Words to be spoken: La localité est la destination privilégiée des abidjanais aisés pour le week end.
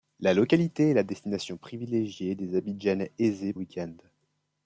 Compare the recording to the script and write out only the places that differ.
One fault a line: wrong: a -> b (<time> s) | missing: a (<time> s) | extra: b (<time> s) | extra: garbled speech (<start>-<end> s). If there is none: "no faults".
missing: pour le (3.5 s)